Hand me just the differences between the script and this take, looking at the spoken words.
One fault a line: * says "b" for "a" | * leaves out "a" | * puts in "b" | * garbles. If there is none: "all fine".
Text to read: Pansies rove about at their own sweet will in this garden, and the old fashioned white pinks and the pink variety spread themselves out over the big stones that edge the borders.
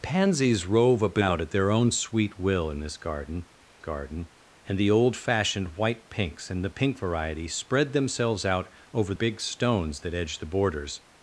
* puts in "garden"
* leaves out "the"